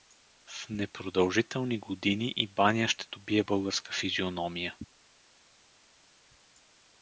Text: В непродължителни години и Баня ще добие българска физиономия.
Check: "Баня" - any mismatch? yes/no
no